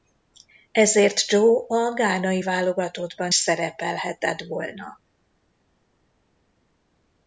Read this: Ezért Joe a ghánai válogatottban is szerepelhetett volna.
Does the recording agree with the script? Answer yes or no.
no